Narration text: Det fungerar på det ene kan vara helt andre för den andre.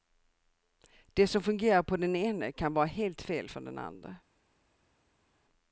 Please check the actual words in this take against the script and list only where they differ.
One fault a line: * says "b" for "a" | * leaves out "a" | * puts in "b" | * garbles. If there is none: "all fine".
* puts in "som"
* says "den" for "det"
* says "fel" for "andre"